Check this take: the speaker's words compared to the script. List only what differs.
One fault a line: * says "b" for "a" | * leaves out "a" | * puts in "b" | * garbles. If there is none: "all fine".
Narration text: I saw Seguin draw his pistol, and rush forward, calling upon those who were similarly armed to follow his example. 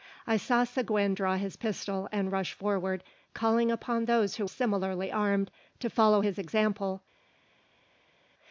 * leaves out "were"